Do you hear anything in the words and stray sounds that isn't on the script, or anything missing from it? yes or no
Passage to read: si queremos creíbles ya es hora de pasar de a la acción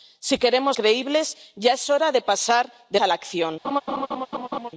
yes